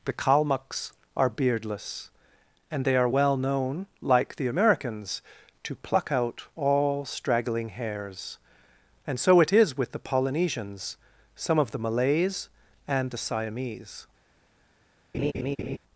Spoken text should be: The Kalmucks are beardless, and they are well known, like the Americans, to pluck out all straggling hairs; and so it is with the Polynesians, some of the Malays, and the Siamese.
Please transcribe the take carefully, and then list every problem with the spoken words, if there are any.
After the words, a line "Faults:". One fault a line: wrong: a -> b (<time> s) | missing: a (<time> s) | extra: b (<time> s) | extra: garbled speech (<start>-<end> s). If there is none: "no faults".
The Kalmucks are beardless, and they are well known, like the Americans, to pluck out all straggling hairs; and so it is with the Polynesians, some of the Malays, and the Siamese.
Faults:
no faults